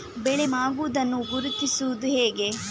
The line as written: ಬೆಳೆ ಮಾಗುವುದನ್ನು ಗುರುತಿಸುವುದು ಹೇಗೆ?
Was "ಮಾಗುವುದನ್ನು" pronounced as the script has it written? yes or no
yes